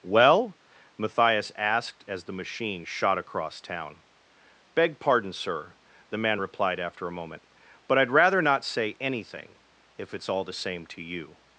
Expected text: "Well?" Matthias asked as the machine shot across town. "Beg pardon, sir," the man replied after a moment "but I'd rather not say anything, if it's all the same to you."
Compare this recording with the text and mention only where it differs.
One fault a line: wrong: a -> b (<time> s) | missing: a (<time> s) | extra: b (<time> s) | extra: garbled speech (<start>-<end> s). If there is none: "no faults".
no faults